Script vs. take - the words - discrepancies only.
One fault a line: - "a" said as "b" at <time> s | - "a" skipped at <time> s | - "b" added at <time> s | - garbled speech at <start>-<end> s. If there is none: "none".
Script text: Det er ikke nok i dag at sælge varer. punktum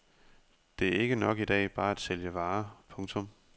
- "bare" added at 1.7 s